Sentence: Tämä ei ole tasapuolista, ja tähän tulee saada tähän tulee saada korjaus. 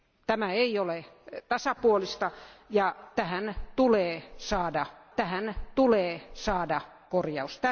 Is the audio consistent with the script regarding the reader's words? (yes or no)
yes